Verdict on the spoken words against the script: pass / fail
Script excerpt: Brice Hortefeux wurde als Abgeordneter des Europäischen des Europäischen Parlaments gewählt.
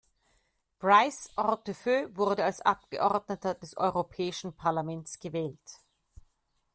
fail